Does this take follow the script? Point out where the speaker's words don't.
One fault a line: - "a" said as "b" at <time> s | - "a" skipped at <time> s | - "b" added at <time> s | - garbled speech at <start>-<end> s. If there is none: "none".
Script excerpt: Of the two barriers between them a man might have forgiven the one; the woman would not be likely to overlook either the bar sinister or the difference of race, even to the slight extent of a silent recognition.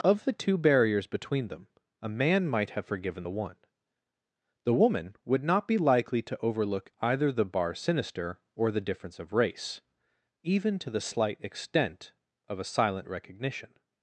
none